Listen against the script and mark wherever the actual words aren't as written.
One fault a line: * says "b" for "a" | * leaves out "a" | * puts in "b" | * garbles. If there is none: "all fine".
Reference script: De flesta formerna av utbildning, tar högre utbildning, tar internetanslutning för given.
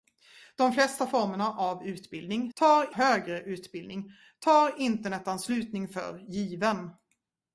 all fine